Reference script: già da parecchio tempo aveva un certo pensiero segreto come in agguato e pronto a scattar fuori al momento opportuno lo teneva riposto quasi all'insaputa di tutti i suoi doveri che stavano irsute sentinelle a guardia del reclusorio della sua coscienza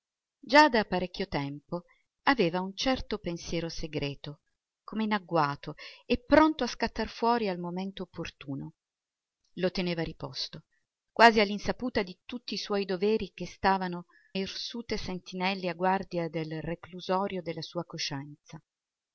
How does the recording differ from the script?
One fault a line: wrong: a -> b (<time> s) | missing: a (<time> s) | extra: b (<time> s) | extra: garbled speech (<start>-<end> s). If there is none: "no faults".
no faults